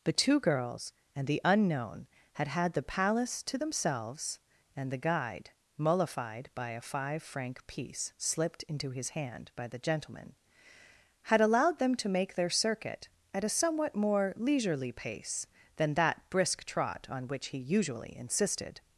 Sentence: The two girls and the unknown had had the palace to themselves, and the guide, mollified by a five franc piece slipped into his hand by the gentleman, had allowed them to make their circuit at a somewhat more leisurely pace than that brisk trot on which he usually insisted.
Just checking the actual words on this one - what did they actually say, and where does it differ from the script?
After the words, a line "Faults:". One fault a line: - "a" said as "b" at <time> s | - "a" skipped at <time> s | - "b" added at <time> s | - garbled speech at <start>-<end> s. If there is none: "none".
The two girls and the unknown had had the palace to themselves, and the guide, mollified by a five franc piece slipped into his hand by the gentleman, had allowed them to make their circuit at a somewhat more leisurely pace than that brisk trot on which he usually insisted.
Faults:
none